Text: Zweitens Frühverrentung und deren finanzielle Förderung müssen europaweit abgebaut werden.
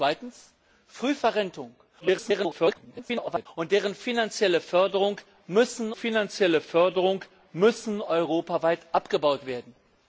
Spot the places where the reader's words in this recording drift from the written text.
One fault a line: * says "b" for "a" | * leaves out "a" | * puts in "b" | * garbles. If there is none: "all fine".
* garbles
* puts in "finanzielle Förderung müssen"